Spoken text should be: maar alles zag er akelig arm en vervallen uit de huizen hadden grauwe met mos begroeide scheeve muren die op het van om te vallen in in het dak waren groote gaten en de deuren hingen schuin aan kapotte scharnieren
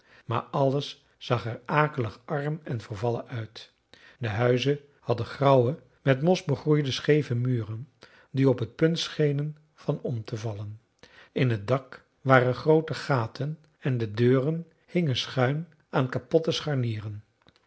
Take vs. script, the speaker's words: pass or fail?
fail